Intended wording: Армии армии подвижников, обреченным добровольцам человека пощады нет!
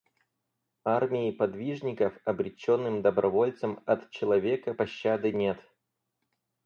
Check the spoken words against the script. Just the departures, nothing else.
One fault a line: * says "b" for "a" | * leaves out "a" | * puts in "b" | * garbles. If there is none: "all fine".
* leaves out "армии"
* puts in "от"